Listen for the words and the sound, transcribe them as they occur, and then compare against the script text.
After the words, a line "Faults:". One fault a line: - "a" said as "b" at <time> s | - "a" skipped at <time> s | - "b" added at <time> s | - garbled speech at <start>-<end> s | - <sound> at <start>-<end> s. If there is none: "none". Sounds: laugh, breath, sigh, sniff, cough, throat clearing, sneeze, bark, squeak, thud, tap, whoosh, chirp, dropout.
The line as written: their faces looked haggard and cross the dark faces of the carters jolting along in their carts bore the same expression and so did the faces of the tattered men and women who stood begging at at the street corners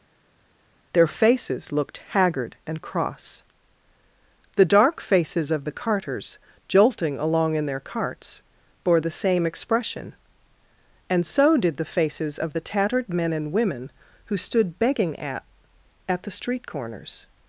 their faces looked haggard and cross the dark faces of the carters jolting along in their carts bore the same expression and so did the faces of the tattered men and women who stood begging at at the street corners
Faults:
none